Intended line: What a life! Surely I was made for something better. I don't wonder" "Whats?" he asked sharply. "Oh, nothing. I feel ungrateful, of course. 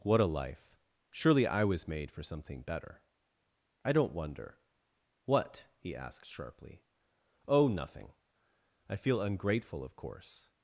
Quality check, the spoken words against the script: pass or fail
fail